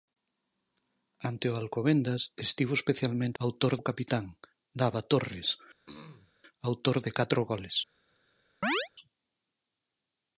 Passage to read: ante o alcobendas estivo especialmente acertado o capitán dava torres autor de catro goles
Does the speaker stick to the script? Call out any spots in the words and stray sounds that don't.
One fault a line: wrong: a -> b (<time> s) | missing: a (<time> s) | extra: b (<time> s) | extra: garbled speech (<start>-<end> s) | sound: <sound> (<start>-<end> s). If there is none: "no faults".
wrong: acertado -> autor (3.4 s)
sound: throat clearing (5.9-6.3 s)
sound: chirp (8.6-8.9 s)